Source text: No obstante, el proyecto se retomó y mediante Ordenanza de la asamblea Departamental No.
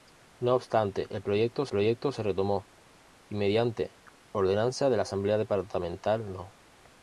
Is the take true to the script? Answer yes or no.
no